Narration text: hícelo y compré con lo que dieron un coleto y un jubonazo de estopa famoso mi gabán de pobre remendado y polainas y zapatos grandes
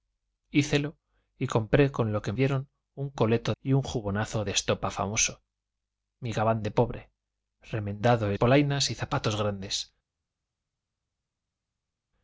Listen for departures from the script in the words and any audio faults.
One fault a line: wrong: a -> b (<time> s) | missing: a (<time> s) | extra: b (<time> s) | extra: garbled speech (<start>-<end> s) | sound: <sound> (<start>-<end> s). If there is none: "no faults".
no faults